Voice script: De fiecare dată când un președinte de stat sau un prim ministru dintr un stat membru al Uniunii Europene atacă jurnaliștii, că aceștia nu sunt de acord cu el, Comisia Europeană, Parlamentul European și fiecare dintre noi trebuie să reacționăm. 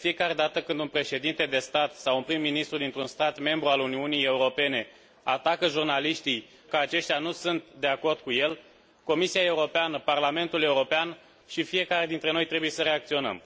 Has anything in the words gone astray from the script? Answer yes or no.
no